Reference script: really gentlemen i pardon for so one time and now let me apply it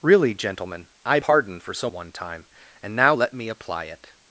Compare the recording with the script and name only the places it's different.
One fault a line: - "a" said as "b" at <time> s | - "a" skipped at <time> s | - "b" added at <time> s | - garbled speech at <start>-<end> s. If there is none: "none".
none